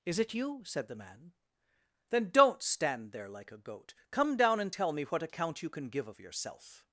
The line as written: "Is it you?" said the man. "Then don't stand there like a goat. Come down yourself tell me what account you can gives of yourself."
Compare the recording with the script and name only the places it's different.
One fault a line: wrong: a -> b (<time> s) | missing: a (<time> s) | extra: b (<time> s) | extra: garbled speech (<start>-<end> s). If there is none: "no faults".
wrong: yourself -> and (4.6 s)
wrong: gives -> give (5.9 s)